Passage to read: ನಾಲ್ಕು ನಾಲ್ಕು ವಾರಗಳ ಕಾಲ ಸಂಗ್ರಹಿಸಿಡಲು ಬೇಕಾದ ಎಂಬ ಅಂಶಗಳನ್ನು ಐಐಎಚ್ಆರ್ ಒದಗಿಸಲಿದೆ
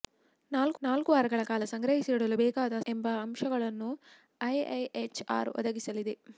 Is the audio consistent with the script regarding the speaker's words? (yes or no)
yes